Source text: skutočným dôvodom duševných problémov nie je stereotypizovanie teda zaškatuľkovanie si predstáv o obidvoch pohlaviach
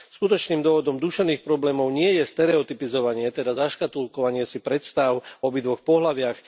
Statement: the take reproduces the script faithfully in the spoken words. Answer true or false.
true